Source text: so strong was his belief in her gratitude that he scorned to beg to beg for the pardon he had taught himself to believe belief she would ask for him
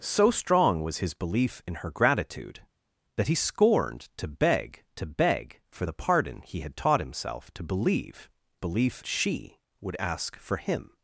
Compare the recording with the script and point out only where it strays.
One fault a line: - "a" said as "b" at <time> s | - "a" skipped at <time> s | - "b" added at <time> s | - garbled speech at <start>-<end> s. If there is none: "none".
none